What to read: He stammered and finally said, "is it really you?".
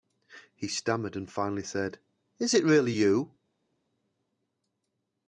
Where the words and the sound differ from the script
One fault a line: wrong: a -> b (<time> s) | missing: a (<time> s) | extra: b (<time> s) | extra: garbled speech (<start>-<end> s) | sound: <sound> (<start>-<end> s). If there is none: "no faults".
no faults